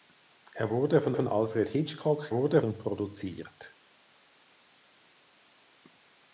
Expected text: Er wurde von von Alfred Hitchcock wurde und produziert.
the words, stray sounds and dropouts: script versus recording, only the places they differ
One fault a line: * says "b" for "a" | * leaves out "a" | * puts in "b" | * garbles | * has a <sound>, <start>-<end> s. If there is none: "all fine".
all fine